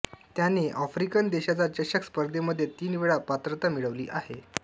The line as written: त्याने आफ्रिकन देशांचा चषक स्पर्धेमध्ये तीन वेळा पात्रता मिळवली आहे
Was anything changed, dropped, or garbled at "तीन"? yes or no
no